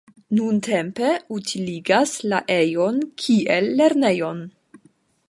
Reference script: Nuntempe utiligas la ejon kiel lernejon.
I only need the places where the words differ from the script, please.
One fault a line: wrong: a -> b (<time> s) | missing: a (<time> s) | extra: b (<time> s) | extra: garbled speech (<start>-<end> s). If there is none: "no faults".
no faults